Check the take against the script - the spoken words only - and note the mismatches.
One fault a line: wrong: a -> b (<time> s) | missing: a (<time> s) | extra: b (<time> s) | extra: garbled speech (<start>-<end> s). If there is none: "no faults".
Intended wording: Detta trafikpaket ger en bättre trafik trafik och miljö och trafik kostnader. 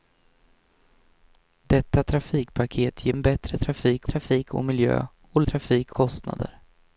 no faults